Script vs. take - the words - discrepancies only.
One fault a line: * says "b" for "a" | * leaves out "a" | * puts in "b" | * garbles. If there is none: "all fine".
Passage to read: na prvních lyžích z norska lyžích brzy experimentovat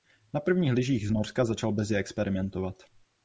* says "začal" for "lyžích"